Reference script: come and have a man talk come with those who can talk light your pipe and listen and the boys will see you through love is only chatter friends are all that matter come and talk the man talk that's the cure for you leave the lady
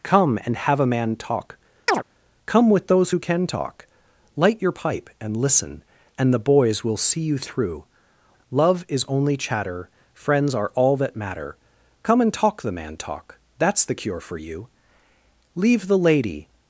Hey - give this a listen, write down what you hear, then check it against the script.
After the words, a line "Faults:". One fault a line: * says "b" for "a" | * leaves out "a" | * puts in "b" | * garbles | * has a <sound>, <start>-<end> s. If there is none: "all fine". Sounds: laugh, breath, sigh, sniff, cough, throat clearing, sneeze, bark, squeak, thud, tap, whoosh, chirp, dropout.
come and have a man talk come with those who can talk light your pipe and listen and the boys will see you through love is only chatter friends are all that matter come and talk the man talk that's the cure for you leave the lady
Faults:
* has a chirp, 1.9-2.0 s